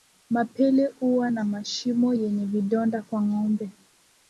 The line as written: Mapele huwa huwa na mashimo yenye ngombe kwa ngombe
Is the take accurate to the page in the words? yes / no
no